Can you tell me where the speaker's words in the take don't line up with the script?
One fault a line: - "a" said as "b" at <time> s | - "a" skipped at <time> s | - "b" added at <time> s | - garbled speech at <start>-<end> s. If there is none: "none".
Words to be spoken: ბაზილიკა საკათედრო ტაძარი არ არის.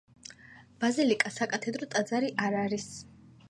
none